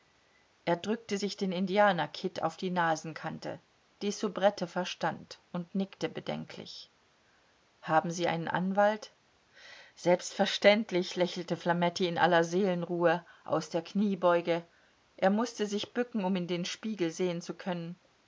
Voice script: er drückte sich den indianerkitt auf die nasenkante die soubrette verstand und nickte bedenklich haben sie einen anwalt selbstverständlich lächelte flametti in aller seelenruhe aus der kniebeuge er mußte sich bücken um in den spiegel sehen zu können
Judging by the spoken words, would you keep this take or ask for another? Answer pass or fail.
pass